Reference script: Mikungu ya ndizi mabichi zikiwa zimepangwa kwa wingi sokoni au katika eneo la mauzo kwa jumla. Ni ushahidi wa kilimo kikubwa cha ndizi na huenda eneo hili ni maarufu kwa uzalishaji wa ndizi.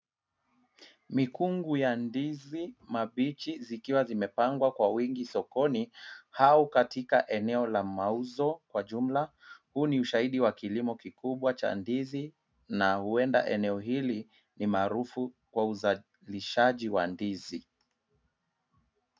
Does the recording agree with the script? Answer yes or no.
no